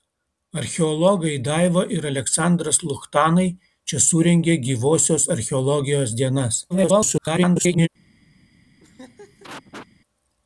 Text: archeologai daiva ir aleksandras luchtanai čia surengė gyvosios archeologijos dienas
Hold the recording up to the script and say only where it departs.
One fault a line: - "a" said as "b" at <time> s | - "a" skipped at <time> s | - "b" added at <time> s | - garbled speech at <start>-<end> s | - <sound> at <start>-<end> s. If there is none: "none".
- garbled speech at 6.7-7.9 s
- laugh at 8.8-9.9 s